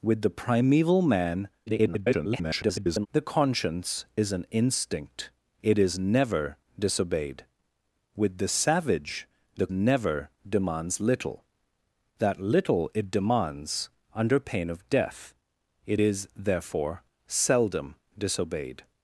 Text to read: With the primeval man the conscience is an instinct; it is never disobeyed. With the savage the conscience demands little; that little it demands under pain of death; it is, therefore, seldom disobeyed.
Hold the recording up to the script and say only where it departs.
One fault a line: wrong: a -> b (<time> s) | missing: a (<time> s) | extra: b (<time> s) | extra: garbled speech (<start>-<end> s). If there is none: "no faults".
extra: garbled speech (1.7-3.1 s)
wrong: conscience -> never (9.7 s)